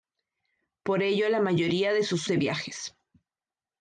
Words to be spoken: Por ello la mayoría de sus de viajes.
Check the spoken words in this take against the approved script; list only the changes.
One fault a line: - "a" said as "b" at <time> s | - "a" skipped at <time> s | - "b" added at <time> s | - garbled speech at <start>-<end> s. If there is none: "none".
none